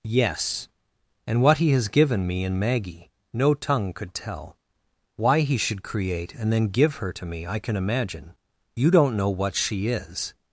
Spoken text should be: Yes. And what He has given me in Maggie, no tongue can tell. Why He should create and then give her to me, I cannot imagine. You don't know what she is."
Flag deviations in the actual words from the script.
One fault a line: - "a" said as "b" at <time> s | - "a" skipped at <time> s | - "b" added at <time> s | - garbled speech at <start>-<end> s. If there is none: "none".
- "can" said as "could" at 3.9 s
- "cannot" said as "can" at 7.6 s